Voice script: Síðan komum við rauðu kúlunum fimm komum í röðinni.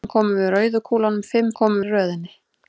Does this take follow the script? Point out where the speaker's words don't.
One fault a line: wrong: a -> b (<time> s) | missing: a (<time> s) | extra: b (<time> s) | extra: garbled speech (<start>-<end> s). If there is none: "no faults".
no faults